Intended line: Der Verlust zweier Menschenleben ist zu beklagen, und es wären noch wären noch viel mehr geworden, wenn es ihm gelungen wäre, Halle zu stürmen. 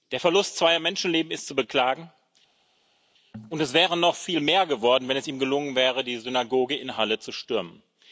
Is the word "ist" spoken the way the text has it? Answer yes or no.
yes